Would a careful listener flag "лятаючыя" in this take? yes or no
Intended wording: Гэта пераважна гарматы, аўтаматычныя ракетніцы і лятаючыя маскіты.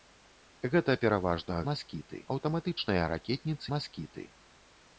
yes